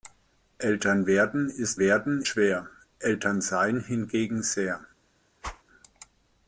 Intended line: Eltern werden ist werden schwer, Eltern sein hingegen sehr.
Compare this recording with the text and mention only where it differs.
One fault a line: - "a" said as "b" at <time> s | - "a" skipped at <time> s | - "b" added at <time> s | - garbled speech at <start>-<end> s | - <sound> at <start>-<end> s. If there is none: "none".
- whoosh at 5.4-5.6 s